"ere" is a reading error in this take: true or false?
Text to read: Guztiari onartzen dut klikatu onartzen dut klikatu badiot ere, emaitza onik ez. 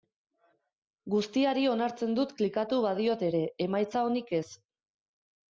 false